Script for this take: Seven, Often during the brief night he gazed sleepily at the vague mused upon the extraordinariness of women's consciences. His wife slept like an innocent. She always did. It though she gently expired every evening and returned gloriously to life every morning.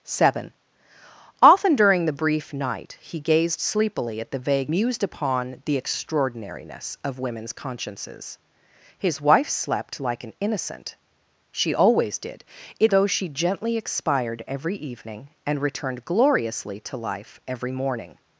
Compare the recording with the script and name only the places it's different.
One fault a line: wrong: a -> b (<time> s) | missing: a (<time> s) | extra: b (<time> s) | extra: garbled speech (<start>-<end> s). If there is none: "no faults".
no faults